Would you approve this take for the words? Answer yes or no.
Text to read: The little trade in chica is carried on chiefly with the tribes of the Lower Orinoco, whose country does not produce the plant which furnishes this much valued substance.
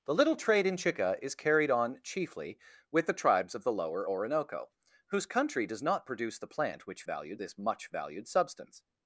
no